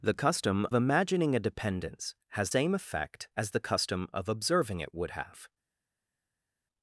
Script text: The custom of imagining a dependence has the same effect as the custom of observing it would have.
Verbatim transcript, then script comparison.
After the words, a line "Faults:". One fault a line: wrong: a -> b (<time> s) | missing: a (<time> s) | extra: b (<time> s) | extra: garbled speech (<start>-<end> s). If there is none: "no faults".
The custom imagining a dependence has same effect as the custom of observing it would have.
Faults:
missing: of (0.7 s)
missing: the (2.5 s)